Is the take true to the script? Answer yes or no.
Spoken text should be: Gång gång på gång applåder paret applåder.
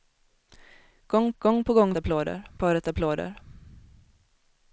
yes